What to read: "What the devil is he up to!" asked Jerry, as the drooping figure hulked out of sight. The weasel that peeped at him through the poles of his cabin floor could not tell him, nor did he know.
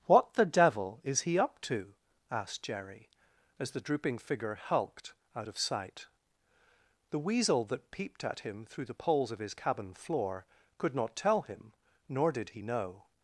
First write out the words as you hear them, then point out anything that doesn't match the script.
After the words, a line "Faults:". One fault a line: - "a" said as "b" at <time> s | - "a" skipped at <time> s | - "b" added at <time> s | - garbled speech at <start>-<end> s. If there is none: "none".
"What the devil is he up to!" asked Jerry, as the drooping figure hulked out of sight. The weasel that peeped at him through the poles of his cabin floor could not tell him, nor did he know.
Faults:
none